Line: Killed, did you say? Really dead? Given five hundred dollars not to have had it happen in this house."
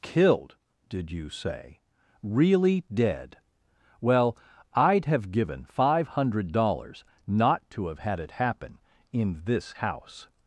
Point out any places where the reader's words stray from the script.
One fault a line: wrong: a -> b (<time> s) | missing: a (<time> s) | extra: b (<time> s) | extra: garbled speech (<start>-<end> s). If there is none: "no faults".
extra: Well I'd have (4.0 s)